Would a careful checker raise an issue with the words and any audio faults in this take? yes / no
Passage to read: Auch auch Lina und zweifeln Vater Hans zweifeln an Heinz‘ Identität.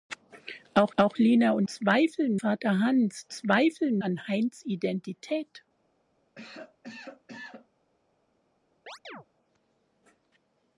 yes